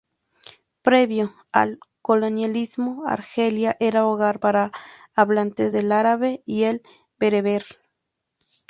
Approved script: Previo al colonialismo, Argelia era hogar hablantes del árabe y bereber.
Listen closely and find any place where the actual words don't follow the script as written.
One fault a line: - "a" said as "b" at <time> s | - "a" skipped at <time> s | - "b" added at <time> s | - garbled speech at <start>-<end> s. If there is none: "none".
- "para" added at 4.4 s
- "el" added at 6.6 s